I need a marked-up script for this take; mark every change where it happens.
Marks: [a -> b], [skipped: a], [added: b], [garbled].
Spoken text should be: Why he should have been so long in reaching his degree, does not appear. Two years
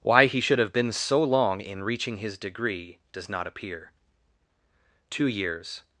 Why he should have been so long in reaching his degree, does not appear. Two years